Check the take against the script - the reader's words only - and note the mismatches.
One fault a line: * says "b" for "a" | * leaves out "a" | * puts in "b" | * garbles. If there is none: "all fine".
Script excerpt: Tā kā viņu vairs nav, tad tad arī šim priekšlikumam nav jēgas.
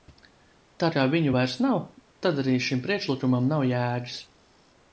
* leaves out "tad"